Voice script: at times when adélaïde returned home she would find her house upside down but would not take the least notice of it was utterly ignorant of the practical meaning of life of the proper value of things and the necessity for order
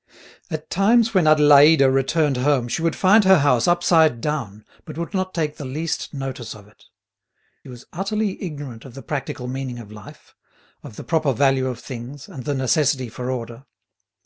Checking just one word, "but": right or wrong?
right